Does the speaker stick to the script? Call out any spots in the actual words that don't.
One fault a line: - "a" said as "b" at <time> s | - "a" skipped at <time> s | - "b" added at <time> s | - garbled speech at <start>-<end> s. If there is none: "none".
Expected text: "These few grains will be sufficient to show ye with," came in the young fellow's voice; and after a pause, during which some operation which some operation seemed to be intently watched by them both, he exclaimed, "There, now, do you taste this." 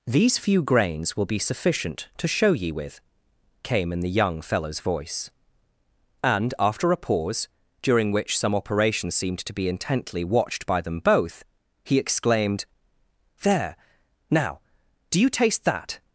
- "which some operation" skipped at 9.1 s
- "this" said as "that" at 15.7 s